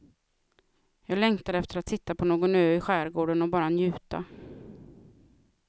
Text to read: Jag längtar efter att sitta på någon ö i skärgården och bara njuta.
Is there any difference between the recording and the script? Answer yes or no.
no